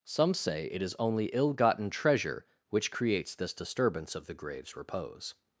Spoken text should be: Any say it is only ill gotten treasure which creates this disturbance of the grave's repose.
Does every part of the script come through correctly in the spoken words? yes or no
no